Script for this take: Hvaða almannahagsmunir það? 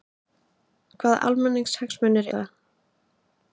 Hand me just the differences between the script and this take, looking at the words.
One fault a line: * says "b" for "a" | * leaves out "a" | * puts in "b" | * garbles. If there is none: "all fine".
all fine